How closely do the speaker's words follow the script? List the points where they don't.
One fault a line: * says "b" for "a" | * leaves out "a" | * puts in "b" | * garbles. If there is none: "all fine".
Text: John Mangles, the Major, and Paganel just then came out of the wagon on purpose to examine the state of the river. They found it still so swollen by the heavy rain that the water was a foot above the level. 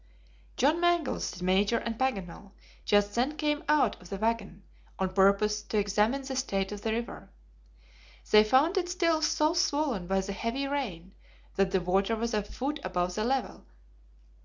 all fine